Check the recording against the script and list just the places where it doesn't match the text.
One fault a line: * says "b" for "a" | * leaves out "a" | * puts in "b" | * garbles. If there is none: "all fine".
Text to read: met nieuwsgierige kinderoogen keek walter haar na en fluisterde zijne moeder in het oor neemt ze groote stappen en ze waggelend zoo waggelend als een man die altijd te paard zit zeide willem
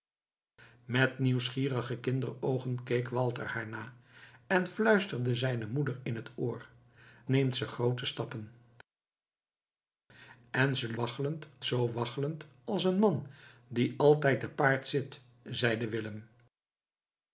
all fine